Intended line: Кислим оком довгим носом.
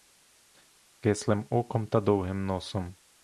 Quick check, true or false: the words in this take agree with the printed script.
false